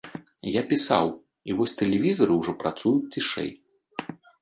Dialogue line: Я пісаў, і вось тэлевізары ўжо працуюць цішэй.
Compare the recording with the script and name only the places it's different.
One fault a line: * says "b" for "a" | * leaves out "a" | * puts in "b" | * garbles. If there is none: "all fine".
all fine